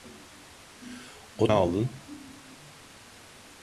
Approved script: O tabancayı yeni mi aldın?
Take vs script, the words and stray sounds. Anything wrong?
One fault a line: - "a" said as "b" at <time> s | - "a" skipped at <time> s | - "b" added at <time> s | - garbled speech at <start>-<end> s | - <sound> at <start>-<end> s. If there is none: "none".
- "tabancayı yeni mi" skipped at 1.5 s